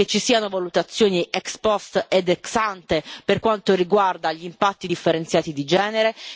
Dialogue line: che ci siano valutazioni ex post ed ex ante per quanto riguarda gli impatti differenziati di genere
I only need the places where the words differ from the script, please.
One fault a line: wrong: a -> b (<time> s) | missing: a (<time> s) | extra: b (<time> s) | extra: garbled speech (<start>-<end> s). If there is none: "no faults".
no faults